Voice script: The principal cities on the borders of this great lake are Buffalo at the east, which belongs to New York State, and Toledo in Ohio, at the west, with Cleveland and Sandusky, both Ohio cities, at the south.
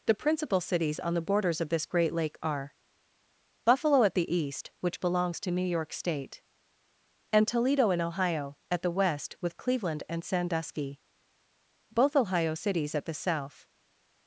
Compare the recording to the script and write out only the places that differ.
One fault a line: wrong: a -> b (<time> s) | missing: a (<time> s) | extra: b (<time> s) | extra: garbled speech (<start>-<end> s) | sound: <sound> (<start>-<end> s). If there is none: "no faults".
no faults